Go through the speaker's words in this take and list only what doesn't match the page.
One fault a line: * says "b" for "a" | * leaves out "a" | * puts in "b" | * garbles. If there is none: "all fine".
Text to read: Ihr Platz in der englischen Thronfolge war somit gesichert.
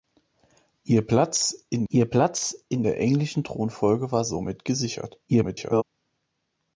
* puts in "ihr Platz in"
* garbles